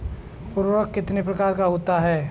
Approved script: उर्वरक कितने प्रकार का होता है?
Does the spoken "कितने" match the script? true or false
true